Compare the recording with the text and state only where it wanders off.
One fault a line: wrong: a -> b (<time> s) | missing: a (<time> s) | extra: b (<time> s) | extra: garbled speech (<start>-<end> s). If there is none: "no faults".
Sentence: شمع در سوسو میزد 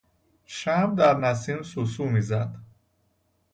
extra: نسیم (1.2 s)